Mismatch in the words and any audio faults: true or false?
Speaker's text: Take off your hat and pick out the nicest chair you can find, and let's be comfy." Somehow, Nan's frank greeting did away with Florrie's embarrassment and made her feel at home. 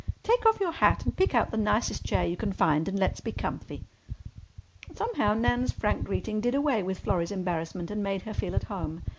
false